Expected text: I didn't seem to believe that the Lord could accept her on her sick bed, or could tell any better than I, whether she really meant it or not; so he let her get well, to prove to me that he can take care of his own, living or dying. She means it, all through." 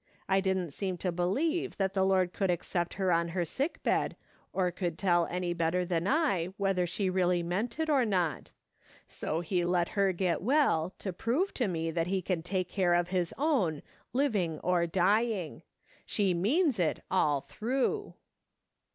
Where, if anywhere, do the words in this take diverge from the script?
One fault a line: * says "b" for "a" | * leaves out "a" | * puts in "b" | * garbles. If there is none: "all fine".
all fine